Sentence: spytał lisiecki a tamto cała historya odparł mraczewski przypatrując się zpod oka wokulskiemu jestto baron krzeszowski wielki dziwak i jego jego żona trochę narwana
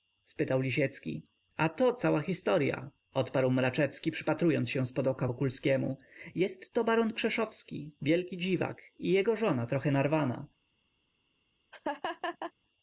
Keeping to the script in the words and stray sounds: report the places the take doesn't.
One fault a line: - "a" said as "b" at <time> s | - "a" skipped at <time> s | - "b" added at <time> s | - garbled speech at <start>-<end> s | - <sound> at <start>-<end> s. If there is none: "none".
- "tamto" said as "to" at 1.7 s
- "jego" skipped at 9.3 s
- laugh at 11.7-12.5 s